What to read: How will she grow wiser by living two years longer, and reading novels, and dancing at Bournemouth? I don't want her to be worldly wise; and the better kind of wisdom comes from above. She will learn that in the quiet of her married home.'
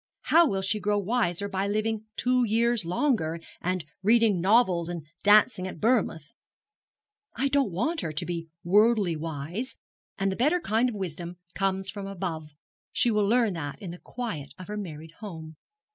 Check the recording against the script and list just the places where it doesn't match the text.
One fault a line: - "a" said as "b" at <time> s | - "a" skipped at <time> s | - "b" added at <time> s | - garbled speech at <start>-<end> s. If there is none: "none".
none